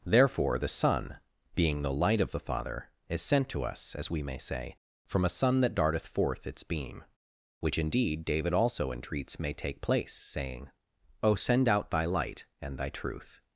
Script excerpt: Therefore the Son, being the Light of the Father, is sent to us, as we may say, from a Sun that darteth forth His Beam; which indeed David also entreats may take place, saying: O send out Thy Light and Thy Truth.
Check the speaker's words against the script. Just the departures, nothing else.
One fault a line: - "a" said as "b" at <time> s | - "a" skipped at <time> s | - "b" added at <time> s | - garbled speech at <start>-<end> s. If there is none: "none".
- "His" said as "Its" at 6.5 s